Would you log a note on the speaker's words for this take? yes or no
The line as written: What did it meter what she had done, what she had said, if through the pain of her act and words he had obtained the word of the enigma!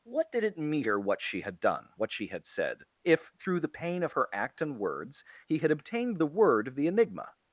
no